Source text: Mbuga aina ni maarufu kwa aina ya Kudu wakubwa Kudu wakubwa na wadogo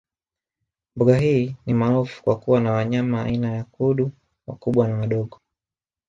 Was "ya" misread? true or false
false